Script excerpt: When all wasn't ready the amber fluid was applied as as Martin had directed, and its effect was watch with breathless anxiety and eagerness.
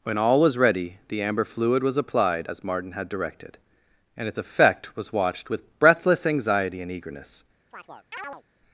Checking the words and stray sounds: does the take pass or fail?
fail